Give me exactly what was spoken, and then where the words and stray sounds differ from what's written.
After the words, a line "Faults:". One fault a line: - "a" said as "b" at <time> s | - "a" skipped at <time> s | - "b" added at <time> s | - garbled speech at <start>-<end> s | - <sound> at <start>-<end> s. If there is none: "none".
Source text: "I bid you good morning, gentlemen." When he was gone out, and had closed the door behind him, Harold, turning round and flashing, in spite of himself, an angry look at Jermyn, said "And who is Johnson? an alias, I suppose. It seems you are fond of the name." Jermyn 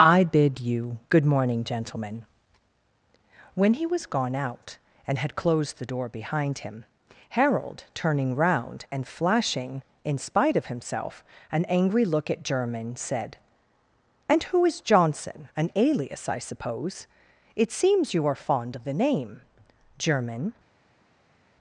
"I bid you good morning, gentlemen." When he was gone out, and had closed the door behind him, Harold, turning round and flashing, in spite of himself, an angry look at Jermyn, said "And who is Johnson? an alias, I suppose. It seems you are fond of the name." Jermyn
Faults:
none